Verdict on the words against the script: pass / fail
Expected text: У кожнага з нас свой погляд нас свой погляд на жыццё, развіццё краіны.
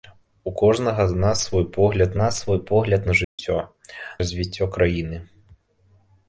pass